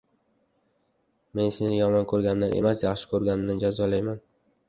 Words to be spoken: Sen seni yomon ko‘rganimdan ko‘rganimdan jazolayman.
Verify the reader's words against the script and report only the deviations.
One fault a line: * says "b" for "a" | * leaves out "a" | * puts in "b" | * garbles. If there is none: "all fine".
* says "Men" for "Sen"
* puts in "emas yaxshi"